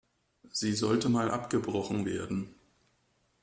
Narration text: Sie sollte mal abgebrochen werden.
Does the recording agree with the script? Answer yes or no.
yes